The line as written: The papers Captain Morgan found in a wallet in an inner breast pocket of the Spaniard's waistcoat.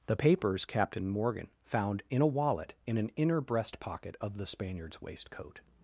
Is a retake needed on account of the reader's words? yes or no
no